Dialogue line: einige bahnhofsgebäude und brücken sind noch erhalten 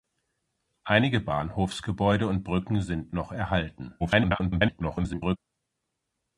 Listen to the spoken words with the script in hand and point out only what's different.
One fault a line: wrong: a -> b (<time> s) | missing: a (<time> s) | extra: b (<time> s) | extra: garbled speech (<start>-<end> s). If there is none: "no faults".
extra: garbled speech (4.0-5.4 s)